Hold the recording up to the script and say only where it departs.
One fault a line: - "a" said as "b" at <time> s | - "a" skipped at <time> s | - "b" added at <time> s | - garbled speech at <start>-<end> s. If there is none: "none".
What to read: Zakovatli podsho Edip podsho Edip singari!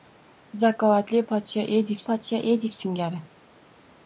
none